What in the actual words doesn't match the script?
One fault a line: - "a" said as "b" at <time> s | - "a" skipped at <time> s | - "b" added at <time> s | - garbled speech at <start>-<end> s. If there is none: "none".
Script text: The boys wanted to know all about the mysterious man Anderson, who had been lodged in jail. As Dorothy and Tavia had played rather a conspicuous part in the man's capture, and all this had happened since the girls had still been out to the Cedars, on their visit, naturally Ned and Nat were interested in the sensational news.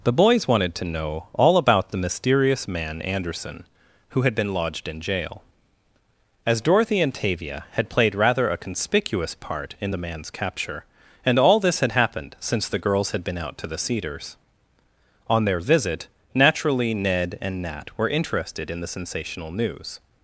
- "still" skipped at 13.3 s